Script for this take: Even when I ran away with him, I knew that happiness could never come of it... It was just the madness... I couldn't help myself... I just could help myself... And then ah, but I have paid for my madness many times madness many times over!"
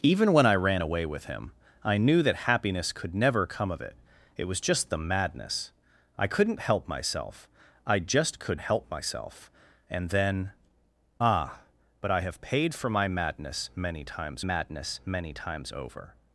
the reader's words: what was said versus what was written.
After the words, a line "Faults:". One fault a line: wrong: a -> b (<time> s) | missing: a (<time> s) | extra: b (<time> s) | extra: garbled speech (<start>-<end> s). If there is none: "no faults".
Even when I ran away with him, I knew that happiness could never come of it... It was just the madness... I couldn't help myself... I just could help myself... And then ah, but I have paid for my madness many times madness many times over!"
Faults:
no faults